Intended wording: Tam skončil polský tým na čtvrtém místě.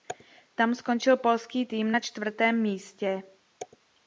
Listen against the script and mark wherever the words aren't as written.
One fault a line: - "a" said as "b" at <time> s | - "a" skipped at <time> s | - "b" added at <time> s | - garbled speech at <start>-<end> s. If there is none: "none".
none